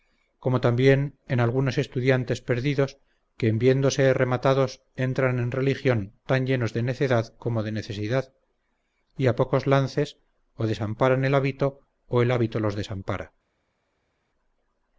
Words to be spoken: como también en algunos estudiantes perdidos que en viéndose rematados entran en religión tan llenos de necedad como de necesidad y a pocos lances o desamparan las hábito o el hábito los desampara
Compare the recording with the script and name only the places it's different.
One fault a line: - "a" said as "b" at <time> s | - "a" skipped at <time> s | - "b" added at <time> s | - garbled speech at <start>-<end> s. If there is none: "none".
- "las" said as "el" at 11.2 s